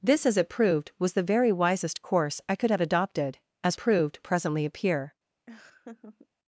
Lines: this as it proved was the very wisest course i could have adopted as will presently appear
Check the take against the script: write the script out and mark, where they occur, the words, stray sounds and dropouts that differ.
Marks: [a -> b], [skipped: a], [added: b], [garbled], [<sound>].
this as it proved was the very wisest course i could have adopted as [will -> proved] presently appear [laugh]